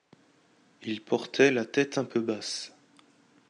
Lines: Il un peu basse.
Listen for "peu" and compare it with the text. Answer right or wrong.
right